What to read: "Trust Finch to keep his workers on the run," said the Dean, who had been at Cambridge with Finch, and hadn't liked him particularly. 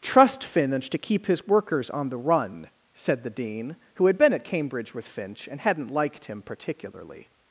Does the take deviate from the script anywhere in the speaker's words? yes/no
no